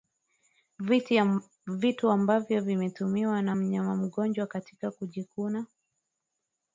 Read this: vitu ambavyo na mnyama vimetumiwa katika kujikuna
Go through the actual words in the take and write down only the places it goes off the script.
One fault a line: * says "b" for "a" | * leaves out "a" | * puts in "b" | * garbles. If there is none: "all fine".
* puts in "vimetumiwa"
* says "mgonjwa" for "vimetumiwa"